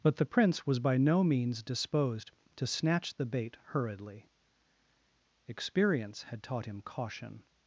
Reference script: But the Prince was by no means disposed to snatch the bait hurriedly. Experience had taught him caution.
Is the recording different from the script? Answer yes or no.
no